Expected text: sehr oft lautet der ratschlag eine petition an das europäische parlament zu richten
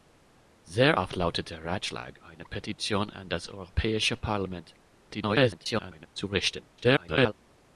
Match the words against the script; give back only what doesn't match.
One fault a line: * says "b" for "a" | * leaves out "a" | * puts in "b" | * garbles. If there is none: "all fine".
* garbles
* garbles